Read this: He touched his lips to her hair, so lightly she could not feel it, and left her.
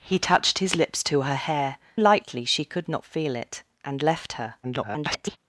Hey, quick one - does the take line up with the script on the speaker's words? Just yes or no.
no